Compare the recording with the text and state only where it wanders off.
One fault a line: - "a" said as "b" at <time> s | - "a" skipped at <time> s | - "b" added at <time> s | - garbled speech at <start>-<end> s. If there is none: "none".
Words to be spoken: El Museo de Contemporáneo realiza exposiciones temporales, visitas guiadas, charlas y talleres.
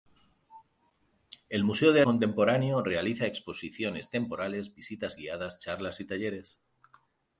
none